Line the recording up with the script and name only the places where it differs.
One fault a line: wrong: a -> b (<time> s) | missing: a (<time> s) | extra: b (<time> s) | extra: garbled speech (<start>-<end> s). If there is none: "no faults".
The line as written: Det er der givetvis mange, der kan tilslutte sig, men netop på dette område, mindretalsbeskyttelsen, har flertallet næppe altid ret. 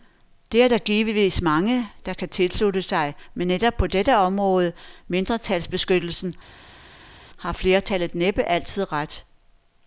no faults